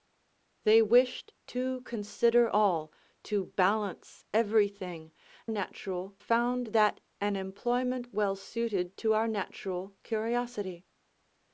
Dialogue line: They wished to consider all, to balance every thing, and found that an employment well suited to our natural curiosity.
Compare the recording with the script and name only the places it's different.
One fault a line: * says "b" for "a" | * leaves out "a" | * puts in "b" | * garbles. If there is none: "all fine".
* says "natural" for "and"